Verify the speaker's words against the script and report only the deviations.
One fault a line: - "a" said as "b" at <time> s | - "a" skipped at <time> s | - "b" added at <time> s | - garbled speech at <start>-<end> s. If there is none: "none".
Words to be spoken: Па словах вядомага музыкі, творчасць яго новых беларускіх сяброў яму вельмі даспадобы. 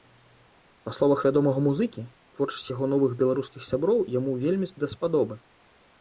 none